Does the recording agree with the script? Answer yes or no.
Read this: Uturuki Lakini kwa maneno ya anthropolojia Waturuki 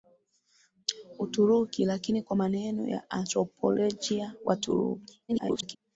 no